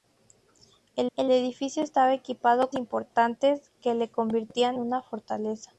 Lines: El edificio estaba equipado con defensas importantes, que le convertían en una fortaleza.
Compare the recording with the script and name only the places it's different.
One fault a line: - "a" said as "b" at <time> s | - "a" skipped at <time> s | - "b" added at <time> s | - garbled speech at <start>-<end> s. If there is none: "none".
- "el" added at 1.2 s
- "con defensas" skipped at 2.7 s
- "en" skipped at 4.8 s